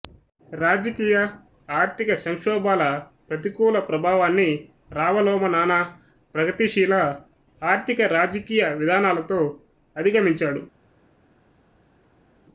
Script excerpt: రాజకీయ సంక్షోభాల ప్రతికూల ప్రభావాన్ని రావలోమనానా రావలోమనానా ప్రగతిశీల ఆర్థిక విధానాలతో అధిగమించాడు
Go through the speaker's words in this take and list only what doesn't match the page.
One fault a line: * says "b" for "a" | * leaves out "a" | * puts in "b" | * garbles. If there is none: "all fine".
* puts in "ఆర్థిక"
* leaves out "రావలోమనానా"
* puts in "రాజకీయ"